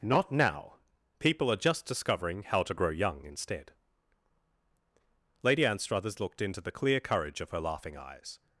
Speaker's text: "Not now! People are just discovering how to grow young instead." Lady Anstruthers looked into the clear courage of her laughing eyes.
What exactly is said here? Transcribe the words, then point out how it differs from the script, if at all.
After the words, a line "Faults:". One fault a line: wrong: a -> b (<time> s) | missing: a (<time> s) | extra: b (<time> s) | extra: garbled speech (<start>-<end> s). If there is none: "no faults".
"Not now! People are just discovering how to grow young instead." Lady Anstruthers looked into the clear courage of her laughing eyes.
Faults:
no faults